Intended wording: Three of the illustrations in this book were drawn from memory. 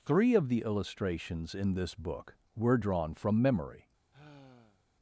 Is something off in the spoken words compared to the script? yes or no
no